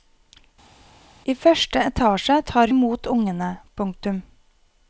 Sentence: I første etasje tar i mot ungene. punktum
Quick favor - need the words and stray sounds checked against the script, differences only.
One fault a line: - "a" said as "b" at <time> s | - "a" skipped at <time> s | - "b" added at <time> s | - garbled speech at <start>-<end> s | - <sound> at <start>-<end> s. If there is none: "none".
none